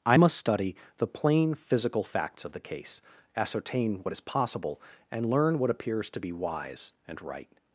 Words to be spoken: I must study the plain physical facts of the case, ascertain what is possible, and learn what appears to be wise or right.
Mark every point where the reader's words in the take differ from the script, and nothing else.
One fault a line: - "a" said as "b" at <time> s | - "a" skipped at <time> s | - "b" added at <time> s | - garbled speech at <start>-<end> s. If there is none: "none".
- "or" said as "and" at 7.1 s